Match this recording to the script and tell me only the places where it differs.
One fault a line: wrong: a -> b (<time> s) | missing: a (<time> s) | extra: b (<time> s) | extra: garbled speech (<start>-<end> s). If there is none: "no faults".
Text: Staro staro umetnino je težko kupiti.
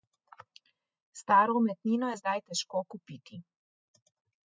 missing: staro (1.6 s)
extra: zdaj (2.2 s)